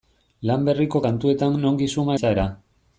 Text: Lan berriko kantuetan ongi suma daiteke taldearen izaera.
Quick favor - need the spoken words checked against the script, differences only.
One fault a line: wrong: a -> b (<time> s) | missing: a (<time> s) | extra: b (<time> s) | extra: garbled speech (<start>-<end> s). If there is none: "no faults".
missing: daiteke taldearen (2.2 s)